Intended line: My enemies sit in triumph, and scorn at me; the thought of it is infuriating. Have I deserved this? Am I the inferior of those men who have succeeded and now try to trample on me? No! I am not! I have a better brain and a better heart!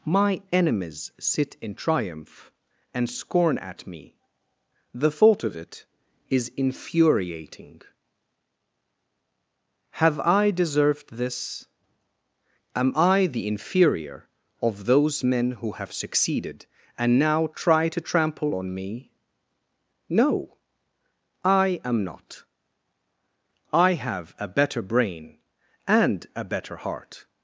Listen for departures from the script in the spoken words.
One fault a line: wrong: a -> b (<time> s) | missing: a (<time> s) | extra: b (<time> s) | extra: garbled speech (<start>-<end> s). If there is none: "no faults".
no faults